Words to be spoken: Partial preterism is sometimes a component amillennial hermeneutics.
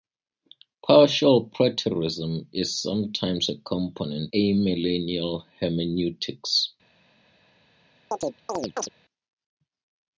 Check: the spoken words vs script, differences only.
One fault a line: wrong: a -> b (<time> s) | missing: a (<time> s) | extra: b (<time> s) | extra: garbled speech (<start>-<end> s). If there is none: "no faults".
no faults